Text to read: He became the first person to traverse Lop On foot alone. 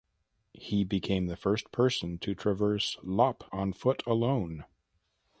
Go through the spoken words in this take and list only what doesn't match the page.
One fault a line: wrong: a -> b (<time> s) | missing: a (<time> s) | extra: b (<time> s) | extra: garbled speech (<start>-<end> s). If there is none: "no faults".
no faults